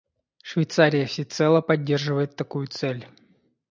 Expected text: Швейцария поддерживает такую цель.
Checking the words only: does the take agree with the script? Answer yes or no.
no